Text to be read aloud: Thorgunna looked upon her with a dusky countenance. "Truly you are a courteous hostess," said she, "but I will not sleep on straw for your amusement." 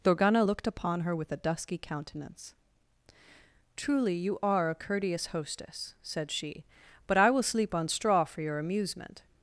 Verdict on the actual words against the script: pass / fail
fail